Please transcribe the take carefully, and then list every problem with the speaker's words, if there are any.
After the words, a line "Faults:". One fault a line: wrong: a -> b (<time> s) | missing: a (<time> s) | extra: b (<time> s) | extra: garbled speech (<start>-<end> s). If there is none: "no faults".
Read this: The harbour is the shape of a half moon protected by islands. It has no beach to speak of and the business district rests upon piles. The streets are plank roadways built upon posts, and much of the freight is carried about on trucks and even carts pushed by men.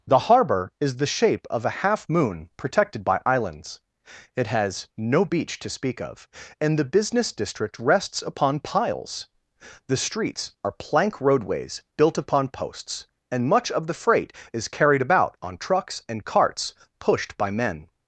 The harbour is the shape of a half moon protected by islands. It has no beach to speak of and the business district rests upon piles. The streets are plank roadways built upon posts, and much of the freight is carried about on trucks and carts pushed by men.
Faults:
missing: even (16.2 s)